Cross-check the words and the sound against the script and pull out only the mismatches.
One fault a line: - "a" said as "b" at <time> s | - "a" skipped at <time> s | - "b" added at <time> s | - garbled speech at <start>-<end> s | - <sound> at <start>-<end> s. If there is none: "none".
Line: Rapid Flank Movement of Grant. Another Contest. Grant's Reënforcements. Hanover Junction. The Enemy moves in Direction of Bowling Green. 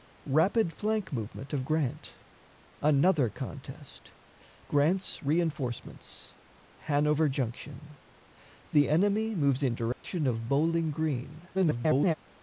- dropout at 9.9-10.0 s
- garbled speech at 11.5-12.1 s